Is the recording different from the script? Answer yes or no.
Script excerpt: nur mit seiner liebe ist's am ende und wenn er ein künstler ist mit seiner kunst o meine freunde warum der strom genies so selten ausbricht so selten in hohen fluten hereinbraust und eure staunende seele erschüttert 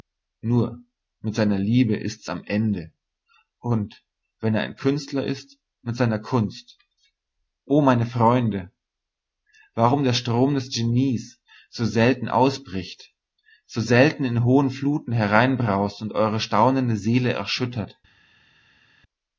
yes